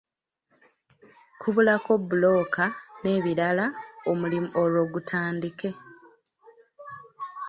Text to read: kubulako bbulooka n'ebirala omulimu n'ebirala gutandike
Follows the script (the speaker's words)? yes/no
no